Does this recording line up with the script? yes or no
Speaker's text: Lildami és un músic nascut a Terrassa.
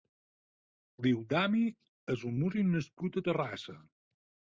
yes